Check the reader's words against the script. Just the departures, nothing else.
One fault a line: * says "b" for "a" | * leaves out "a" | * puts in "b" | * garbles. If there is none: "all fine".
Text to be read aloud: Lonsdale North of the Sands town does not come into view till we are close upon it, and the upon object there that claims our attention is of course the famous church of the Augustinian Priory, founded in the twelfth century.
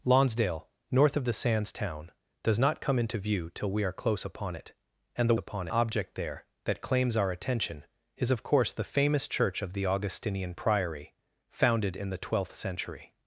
all fine